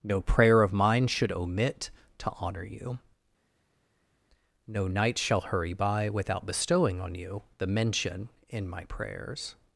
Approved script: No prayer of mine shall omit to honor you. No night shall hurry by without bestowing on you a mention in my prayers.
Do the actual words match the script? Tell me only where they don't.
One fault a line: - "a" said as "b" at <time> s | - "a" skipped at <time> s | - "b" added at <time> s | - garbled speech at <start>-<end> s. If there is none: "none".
- "shall" said as "should" at 1.1 s
- "a" said as "the" at 7.6 s